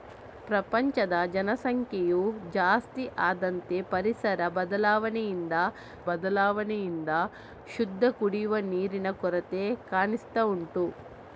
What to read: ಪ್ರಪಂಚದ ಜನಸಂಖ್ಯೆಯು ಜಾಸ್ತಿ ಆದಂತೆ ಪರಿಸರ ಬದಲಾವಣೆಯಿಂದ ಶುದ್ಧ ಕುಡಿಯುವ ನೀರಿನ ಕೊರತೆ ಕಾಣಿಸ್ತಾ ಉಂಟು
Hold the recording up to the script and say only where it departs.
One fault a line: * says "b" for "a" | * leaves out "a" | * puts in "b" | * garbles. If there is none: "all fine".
* puts in "ಬದಲಾವಣೆಯಿಂದ"